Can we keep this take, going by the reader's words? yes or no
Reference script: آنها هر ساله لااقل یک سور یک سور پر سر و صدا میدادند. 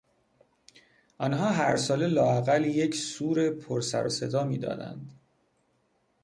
no